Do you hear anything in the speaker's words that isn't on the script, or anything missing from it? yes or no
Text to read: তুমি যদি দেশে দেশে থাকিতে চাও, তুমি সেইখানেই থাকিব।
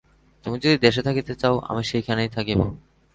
yes